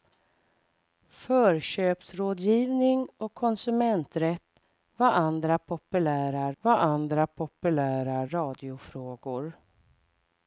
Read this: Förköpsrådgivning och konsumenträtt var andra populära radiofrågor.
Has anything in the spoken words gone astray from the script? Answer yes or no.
yes